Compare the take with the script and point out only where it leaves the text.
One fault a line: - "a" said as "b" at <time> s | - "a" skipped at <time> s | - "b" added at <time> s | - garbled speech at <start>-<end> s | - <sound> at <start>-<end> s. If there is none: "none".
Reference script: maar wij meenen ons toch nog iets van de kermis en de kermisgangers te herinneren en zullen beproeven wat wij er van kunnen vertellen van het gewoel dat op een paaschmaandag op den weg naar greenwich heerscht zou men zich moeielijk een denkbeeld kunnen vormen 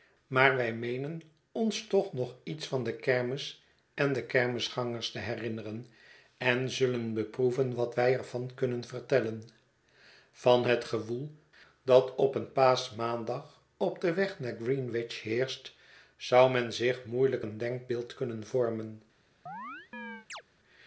- chirp at 19.5-20.4 s